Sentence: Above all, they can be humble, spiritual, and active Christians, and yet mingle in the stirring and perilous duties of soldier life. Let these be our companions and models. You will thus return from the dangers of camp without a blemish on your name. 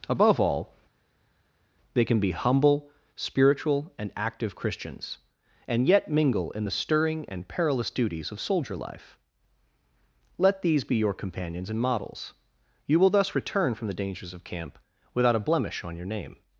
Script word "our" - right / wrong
wrong